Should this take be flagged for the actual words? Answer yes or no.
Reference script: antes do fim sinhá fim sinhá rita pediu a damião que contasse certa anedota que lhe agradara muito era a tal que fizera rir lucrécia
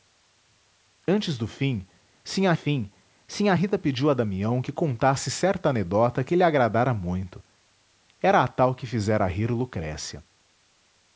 no